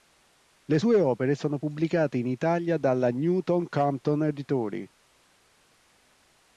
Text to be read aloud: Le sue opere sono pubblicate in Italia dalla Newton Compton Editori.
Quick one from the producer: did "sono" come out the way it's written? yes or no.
yes